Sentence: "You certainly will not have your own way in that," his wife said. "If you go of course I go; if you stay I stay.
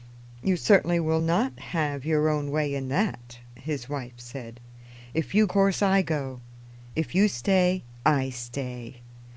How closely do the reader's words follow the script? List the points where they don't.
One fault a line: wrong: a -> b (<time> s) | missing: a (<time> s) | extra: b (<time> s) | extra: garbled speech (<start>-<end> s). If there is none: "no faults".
missing: go of (5.4 s)